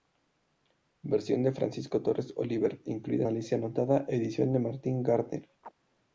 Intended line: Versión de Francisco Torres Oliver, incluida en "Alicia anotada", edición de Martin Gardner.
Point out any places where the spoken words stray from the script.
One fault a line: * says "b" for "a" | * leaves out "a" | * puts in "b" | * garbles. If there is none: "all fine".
* leaves out "en"